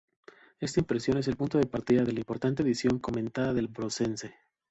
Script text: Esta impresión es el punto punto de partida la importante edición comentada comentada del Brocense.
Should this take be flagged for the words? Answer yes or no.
yes